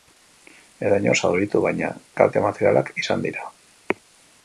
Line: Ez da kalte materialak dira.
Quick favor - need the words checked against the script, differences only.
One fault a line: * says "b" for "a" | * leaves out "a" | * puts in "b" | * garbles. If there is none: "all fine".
* puts in "inor zauritu baina"
* puts in "izan"